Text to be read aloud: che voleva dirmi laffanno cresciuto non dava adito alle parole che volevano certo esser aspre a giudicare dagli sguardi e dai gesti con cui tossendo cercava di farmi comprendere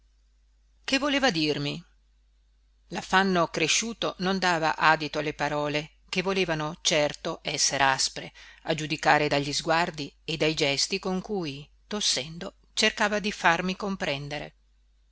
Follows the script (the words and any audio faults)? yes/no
yes